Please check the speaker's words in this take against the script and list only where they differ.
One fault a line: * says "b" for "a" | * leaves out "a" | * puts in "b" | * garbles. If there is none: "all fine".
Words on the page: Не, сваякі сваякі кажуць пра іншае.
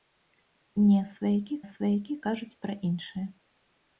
all fine